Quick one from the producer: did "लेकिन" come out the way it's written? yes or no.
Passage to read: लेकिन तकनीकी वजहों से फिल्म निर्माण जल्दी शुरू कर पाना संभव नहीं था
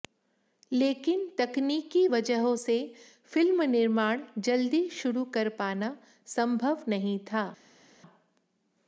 yes